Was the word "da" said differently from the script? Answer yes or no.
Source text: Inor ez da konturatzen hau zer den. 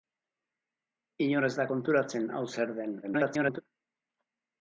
no